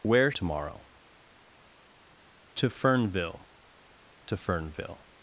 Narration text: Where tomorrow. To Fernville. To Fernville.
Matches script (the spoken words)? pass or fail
pass